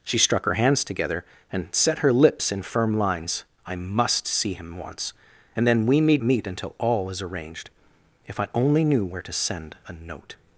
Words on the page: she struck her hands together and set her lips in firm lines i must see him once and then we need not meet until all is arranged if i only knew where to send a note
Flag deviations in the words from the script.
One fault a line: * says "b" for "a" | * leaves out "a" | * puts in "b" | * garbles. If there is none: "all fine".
* leaves out "not"